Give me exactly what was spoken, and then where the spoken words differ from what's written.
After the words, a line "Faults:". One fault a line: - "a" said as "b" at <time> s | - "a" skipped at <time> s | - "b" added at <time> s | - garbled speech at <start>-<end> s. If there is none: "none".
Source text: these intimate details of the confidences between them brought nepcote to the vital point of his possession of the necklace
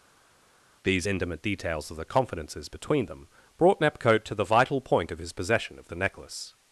these intimate details of the confidences between them brought nepcote to the vital point of his possession of the necklace
Faults:
none